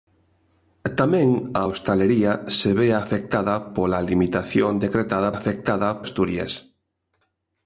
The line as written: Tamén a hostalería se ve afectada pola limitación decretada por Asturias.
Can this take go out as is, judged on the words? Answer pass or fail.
fail